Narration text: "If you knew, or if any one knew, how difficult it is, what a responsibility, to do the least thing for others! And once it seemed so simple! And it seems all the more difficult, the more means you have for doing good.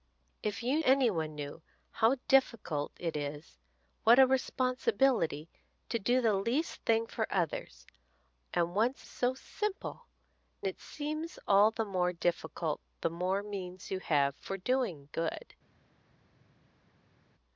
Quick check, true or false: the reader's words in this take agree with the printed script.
false